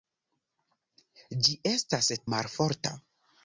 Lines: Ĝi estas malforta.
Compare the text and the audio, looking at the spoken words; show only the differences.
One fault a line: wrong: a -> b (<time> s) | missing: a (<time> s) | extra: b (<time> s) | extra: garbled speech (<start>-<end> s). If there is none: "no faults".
no faults